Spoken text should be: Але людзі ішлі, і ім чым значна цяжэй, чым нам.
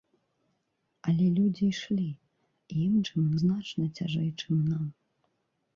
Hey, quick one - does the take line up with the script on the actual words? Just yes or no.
yes